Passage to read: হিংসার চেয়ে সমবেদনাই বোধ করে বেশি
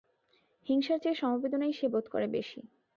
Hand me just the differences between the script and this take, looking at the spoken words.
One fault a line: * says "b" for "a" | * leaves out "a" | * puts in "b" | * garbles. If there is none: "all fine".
* puts in "সে"